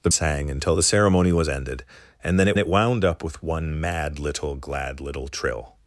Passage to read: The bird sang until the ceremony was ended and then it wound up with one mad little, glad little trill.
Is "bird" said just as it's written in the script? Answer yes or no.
no